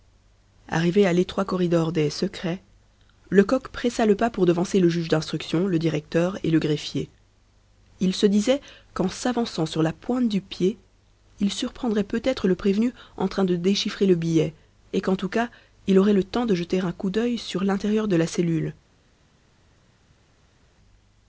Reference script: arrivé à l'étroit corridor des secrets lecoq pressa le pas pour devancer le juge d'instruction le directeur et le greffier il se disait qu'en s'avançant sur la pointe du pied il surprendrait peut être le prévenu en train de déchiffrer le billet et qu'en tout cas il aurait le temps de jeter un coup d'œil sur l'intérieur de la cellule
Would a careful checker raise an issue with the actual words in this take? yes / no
no